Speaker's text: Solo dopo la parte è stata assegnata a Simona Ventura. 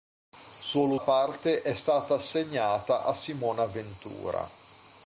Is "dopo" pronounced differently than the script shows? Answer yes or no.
yes